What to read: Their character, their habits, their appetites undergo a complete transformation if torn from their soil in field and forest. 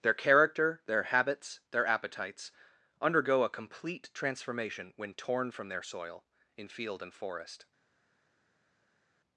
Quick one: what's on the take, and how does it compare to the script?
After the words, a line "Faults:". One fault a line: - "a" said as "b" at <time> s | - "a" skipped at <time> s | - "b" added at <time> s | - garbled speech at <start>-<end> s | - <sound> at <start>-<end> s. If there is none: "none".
Their character, their habits, their appetites undergo a complete transformation when torn from their soil in field and forest.
Faults:
- "if" said as "when" at 5.0 s